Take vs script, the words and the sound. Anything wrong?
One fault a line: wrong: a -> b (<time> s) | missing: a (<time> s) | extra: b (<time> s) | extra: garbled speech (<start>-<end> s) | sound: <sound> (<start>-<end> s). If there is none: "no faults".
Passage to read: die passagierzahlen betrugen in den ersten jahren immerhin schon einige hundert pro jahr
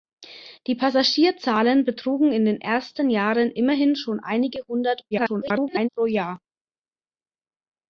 extra: garbled speech (5.1-5.9 s)